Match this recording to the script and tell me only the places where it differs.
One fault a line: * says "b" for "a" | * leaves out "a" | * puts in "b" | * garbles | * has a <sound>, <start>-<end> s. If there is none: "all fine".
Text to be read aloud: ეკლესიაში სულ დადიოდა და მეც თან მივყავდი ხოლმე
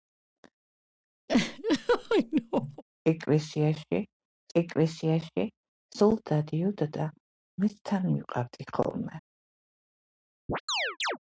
* has a laugh, 1.3-2.8 s
* puts in "ეკლესიაში"
* has a chirp, 10.5-11.2 s